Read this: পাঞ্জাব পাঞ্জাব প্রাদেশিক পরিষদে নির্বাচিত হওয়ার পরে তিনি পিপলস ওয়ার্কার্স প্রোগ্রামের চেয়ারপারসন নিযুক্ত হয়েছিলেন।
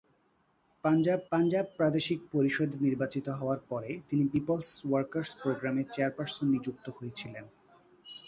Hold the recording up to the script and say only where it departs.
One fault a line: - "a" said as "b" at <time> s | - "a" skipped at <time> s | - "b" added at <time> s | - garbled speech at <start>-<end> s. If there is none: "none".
none